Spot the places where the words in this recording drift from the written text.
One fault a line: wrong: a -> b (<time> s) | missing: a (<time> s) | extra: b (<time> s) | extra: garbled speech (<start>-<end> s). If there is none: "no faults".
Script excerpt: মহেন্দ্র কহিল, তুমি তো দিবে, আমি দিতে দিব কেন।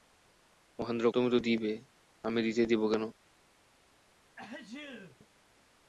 missing: কহিল (1.1 s)